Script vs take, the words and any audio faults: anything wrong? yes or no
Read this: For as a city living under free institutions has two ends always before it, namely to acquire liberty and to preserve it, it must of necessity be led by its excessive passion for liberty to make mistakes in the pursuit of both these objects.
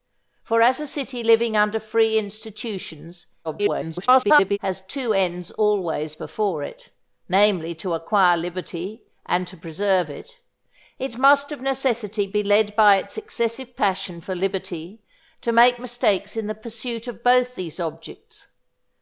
yes